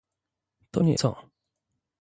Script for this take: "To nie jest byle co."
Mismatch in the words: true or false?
true